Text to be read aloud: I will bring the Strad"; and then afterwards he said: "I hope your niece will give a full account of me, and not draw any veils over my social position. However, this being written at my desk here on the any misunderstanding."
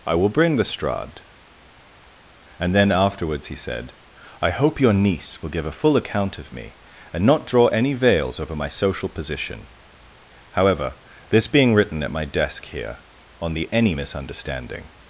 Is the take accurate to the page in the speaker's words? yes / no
yes